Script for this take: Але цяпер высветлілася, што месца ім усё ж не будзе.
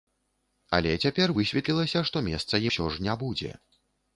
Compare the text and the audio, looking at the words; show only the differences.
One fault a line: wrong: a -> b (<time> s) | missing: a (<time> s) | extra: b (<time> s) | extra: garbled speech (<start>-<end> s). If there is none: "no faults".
missing: ім (2.7 s)